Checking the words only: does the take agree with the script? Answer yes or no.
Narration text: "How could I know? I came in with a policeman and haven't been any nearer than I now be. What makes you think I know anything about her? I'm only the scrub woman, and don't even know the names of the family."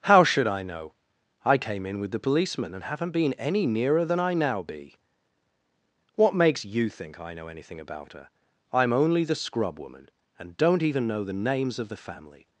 no